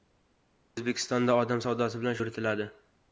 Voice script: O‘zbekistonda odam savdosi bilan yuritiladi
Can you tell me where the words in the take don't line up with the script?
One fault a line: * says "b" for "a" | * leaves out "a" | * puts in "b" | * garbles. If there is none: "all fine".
all fine